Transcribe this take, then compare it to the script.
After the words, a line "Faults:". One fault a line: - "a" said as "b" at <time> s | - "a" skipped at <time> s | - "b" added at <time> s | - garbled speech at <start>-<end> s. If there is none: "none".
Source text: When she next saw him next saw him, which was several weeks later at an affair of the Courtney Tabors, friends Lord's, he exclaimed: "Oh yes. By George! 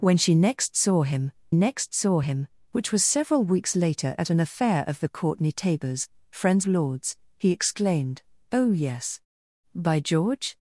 When she next saw him next saw him, which was several weeks later at an affair of the Courtney Tabors, friends Lord's, he exclaimed: "Oh yes. By George!
Faults:
none